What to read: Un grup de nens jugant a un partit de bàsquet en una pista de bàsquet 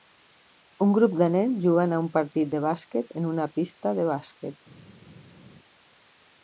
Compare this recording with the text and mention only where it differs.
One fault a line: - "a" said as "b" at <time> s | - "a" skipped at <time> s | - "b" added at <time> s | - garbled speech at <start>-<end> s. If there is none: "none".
none